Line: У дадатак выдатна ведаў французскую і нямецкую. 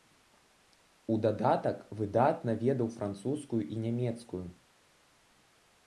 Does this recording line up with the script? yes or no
yes